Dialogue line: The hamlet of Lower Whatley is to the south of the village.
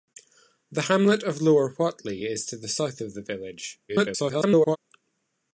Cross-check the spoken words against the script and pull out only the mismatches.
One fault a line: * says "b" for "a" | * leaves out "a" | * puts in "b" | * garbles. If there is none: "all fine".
* garbles